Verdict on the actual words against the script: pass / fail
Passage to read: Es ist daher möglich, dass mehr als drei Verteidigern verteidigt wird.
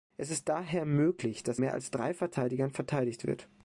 pass